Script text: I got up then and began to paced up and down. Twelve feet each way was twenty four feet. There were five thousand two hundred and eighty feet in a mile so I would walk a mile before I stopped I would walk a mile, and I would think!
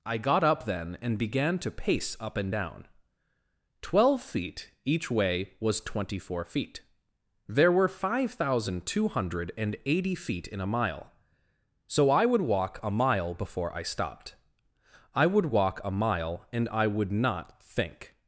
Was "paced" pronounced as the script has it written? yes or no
no